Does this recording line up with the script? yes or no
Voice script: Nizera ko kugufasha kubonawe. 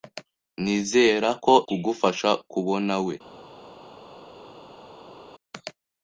yes